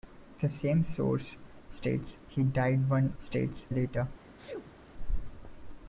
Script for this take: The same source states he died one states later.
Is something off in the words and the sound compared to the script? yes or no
yes